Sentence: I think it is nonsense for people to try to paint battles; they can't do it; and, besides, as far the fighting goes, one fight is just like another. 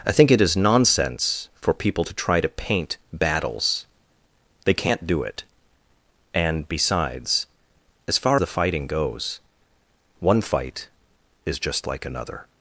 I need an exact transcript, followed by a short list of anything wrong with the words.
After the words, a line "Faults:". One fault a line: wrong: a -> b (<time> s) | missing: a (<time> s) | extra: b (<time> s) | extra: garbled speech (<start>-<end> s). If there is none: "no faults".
I think it is nonsense for people to try to paint battles; they can't do it; and, besides, as far the fighting goes, one fight is just like another.
Faults:
no faults